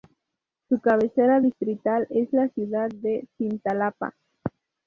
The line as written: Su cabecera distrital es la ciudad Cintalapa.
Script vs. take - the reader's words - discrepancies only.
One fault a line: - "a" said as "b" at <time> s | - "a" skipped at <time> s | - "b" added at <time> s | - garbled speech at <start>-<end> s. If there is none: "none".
- "de" added at 2.9 s